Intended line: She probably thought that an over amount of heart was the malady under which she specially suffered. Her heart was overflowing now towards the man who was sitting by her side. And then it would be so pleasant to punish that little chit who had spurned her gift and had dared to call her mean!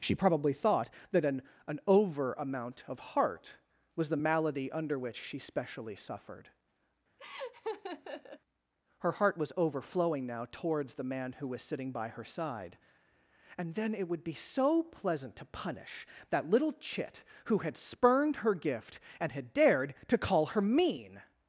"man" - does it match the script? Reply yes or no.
yes